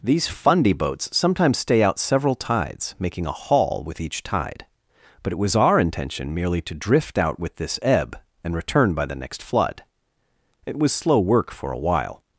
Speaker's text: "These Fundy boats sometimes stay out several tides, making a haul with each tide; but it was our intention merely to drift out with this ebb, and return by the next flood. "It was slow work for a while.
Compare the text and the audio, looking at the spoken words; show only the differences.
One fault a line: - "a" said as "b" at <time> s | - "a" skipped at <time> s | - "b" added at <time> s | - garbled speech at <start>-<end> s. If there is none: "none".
none